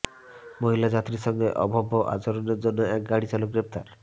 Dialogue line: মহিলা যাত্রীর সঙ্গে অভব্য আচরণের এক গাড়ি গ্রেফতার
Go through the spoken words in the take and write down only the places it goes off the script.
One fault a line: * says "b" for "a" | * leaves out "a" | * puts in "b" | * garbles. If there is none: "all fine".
* puts in "জন্য"
* puts in "চালক"